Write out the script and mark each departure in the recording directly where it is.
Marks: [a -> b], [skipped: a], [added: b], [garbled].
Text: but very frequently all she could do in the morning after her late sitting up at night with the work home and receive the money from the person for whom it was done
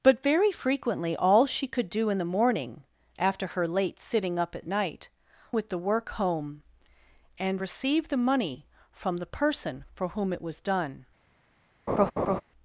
but very frequently all she could do in the morning after her late sitting up at night with the work home and receive the money from the person for whom it was done